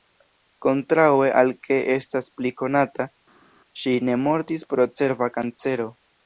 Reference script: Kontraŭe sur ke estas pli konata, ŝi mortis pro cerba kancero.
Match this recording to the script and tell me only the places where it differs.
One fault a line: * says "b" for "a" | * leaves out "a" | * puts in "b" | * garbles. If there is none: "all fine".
* says "al" for "sur"
* puts in "ne"